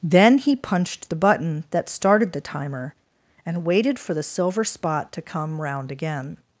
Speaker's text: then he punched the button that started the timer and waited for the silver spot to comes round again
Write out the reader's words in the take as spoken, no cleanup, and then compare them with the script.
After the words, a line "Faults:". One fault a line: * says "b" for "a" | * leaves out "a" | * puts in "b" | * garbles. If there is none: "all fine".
then he punched the button that started the timer and waited for the silver spot to come round again
Faults:
* says "come" for "comes"